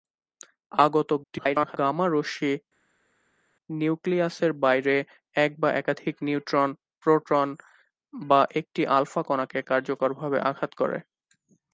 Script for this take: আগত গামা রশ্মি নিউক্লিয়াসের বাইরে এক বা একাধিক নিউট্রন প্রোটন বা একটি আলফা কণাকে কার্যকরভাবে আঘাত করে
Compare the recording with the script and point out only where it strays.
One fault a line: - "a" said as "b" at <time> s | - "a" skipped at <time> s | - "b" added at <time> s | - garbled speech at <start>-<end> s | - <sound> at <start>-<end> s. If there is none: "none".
- garbled speech at 1.2-1.8 s